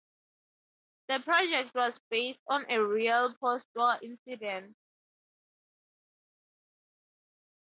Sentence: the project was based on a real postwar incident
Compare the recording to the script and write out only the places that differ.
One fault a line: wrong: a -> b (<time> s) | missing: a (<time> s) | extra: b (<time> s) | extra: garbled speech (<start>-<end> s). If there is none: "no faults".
no faults